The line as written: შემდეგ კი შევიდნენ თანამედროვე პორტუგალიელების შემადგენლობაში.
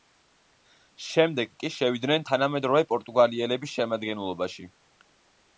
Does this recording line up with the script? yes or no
yes